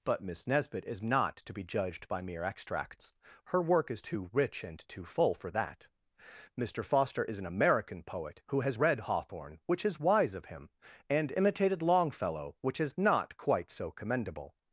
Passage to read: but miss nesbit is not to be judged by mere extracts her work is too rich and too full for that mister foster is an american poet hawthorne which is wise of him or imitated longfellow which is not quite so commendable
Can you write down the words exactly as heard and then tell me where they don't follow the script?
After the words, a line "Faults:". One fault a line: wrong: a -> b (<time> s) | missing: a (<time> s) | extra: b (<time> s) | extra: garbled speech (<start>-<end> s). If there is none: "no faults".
but miss nesbit is not to be judged by mere extracts her work is too rich and too full for that mister foster is an american poet who has read hawthorne which is wise of him and imitated longfellow which is not quite so commendable
Faults:
extra: who has read (8.5 s)
wrong: or -> and (11.1 s)